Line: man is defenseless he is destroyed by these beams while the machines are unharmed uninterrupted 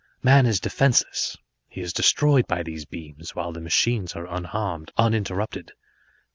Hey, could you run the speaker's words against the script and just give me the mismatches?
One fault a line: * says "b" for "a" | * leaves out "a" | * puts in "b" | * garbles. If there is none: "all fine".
all fine